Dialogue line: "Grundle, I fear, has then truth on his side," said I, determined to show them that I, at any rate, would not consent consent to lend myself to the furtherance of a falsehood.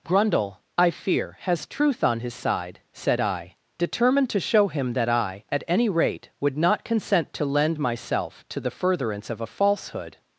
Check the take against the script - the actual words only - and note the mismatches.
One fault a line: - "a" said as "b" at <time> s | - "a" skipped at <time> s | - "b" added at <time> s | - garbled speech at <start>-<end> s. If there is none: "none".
- "then" skipped at 1.7 s
- "them" said as "him" at 4.7 s
- "consent" skipped at 7.3 s